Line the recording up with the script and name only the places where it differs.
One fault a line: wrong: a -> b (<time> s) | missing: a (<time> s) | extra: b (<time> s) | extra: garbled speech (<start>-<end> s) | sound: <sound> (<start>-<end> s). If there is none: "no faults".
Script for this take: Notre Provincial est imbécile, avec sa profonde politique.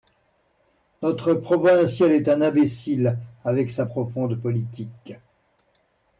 extra: un (2.3 s)